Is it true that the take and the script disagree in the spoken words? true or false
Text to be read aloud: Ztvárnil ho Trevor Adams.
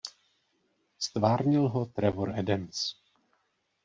false